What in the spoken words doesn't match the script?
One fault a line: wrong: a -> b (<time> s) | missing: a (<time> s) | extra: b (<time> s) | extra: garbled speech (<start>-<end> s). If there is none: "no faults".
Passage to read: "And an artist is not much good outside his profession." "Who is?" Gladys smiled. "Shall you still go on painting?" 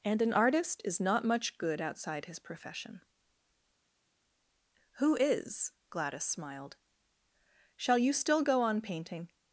no faults